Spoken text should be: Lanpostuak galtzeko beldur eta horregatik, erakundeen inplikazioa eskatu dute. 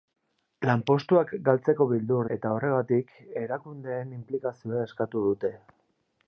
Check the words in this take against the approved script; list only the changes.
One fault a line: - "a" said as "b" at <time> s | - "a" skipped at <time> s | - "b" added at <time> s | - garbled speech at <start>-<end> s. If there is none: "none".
none